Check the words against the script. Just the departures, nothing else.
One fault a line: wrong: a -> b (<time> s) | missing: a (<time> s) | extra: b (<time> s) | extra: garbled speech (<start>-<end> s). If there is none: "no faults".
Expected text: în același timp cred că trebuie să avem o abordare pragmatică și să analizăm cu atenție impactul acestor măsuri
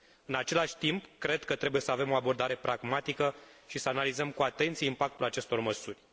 no faults